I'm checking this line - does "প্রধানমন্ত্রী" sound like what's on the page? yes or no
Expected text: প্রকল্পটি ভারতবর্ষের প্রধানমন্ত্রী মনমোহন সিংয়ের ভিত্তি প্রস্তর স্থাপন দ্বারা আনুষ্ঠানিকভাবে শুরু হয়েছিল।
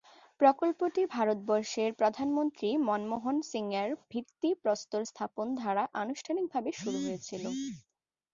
yes